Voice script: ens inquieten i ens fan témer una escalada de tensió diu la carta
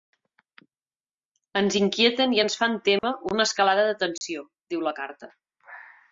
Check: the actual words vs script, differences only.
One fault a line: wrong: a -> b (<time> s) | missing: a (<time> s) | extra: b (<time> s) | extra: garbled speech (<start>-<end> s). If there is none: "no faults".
no faults